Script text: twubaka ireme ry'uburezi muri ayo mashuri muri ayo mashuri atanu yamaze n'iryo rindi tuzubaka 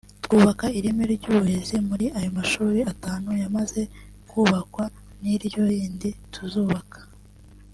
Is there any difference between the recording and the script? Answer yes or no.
yes